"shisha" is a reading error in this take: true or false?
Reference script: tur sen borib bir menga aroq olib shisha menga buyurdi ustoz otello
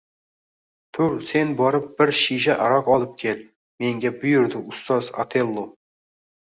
true